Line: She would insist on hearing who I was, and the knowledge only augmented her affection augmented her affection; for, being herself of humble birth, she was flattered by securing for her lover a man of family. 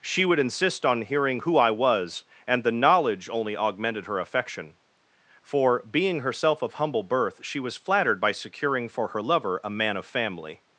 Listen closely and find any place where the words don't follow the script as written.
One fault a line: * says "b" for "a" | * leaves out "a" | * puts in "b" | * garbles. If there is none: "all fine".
* leaves out "augmented her affection"